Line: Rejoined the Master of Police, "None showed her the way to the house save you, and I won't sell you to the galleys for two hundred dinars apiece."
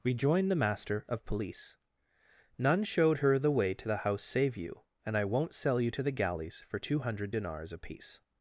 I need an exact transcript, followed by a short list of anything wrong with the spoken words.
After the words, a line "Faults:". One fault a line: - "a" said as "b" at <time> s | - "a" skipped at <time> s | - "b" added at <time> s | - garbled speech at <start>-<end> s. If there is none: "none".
Rejoined the Master of Police, "None showed her the way to the house save you, and I won't sell you to the galleys for two hundred dinars apiece."
Faults:
none